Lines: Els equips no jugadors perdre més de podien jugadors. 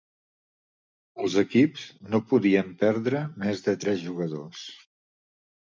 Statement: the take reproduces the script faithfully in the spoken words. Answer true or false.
false